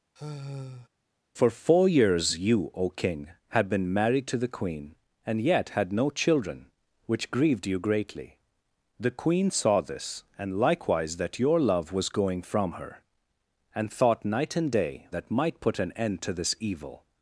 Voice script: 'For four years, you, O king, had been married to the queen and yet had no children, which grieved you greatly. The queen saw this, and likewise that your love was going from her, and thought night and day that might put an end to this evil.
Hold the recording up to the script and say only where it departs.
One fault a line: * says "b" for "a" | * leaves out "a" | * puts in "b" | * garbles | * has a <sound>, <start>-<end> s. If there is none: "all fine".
* has a sigh, 0.2-0.9 s